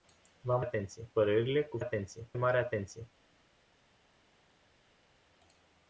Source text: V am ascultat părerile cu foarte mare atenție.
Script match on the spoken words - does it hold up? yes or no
no